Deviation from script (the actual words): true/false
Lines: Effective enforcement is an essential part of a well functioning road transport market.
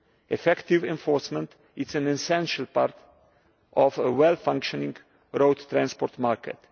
false